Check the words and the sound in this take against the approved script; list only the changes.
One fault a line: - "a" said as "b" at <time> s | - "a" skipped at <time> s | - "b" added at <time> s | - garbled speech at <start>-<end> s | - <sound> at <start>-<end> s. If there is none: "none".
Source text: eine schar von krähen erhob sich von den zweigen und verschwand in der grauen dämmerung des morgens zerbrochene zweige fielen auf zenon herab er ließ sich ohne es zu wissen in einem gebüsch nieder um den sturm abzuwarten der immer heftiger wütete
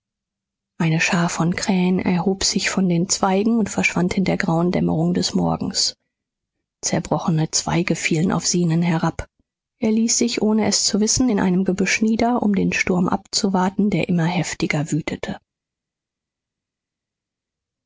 none